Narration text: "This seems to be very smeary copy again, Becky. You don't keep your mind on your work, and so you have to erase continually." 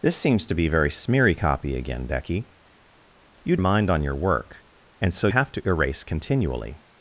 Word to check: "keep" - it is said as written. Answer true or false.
false